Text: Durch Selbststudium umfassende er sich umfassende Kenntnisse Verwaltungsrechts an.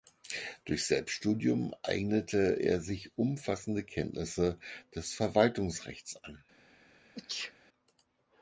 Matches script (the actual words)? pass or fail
fail